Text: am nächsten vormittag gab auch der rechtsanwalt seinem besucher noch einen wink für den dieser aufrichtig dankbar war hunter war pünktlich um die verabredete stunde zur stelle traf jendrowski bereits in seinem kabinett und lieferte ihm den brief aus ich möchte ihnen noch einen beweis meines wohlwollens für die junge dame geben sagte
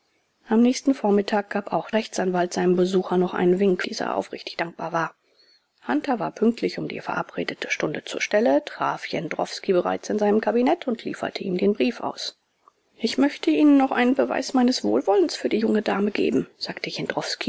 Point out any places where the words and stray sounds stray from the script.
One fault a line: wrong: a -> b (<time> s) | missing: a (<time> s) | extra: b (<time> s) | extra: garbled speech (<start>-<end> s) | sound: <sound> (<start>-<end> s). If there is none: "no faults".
missing: der (1.9 s)
missing: für den (3.8 s)